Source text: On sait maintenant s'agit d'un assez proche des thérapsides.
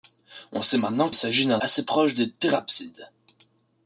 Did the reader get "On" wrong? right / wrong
right